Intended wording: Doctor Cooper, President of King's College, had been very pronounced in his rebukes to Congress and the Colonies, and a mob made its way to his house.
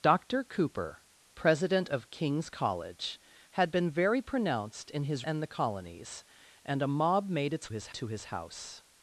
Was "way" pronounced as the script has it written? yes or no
no